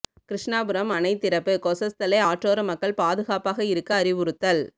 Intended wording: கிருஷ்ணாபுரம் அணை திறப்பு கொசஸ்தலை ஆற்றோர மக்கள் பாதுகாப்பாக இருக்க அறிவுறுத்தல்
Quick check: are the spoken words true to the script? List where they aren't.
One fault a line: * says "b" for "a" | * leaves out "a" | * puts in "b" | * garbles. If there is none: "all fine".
all fine